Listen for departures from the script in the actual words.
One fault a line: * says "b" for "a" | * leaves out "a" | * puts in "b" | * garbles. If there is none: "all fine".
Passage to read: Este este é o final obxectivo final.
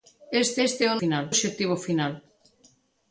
all fine